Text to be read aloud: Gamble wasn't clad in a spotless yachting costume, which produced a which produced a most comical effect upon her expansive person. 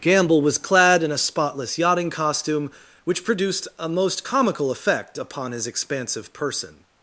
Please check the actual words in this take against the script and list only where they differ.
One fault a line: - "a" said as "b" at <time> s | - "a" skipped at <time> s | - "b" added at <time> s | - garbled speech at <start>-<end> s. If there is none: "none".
- "wasn't" said as "was" at 0.4 s
- "which produced a" skipped at 3.9 s
- "her" said as "his" at 5.5 s